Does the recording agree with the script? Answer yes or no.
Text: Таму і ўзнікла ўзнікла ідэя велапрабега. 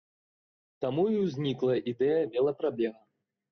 no